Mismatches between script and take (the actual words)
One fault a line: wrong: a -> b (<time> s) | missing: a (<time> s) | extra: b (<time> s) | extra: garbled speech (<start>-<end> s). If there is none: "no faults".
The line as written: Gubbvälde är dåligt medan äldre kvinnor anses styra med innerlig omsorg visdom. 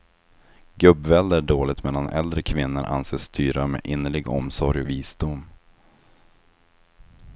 no faults